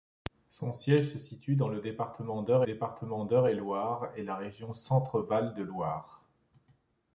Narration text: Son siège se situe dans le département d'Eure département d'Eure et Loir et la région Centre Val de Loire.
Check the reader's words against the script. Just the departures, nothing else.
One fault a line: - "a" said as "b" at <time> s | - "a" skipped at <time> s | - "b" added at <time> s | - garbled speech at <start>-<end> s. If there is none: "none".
none